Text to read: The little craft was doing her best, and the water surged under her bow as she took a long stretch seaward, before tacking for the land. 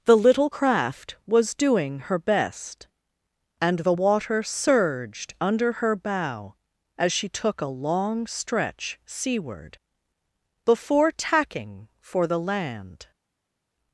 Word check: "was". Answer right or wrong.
right